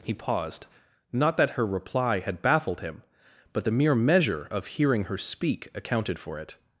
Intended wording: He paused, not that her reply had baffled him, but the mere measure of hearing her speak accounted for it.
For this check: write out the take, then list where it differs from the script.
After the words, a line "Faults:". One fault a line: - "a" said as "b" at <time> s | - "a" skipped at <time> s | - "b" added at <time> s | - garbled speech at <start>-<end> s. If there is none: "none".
He paused, not that her reply had baffled him, but the mere measure of hearing her speak accounted for it.
Faults:
none